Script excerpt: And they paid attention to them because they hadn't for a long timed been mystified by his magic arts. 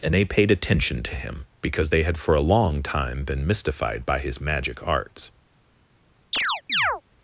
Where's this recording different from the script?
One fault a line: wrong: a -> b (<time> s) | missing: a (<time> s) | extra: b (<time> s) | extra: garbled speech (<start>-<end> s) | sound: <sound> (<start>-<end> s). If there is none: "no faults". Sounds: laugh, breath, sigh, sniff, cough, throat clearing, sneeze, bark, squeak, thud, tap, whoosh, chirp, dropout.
wrong: them -> him (1.2 s)
wrong: hadn't -> had (2.0 s)
wrong: timed -> time (2.8 s)
sound: chirp (6.3-7.0 s)